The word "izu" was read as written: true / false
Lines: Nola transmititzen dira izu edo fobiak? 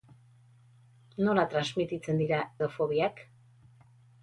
false